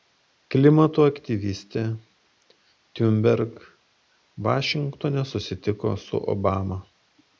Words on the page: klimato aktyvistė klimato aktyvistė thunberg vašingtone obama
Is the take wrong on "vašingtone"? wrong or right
wrong